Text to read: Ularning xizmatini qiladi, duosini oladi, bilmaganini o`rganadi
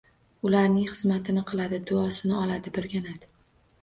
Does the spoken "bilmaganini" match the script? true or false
false